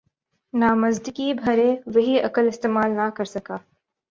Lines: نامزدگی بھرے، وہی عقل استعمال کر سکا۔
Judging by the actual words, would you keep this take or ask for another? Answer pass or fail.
fail